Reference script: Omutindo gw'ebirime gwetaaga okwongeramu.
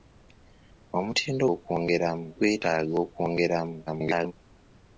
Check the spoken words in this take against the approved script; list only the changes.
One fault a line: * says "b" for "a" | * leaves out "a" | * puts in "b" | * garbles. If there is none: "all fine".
* says "okwongeramu" for "gw'ebirime"
* garbles